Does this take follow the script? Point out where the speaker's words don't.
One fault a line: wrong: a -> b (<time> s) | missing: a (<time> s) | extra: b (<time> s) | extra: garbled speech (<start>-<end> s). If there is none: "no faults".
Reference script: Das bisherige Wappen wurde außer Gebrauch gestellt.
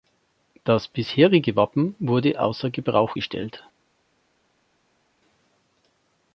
no faults